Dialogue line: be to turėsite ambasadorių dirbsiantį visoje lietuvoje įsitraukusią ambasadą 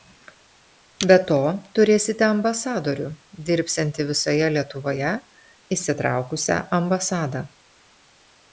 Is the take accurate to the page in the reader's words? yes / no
yes